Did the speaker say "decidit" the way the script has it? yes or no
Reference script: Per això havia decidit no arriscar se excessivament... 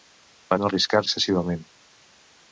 no